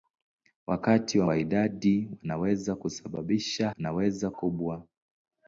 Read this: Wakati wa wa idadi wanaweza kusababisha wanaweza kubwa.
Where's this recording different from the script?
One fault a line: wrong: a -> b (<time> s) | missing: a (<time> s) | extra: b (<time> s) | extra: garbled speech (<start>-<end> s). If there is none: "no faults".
no faults